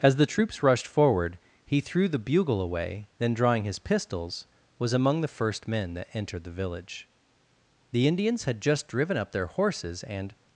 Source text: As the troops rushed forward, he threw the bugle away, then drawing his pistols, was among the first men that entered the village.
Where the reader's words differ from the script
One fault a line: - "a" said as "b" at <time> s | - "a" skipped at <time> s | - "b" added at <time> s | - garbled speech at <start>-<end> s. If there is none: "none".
- "The Indians had just driven up their horses and" added at 7.9 s